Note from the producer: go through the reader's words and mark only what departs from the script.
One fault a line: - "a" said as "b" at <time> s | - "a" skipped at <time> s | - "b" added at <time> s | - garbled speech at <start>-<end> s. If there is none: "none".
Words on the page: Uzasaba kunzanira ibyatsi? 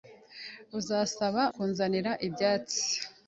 none